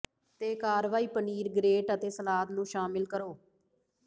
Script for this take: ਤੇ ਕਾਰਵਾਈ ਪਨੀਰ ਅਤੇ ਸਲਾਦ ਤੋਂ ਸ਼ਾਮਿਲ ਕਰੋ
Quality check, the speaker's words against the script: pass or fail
fail